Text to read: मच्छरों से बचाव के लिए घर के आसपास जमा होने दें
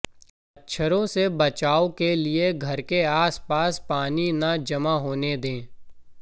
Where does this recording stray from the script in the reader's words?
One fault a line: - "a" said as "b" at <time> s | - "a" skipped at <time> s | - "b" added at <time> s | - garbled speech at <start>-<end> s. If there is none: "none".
- "पानी न" added at 3.9 s